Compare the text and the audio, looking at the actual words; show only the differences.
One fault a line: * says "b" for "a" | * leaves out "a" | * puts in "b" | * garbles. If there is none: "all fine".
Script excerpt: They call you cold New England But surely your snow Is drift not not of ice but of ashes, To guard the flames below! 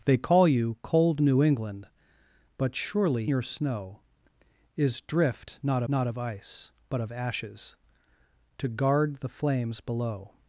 all fine